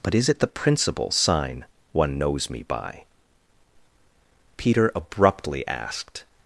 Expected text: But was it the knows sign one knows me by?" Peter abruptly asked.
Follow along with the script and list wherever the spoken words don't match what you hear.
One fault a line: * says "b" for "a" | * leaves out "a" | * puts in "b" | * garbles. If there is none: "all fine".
* says "is" for "was"
* says "principal" for "knows"